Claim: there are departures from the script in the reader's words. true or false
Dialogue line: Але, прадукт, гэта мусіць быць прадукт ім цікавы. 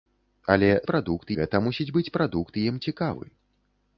false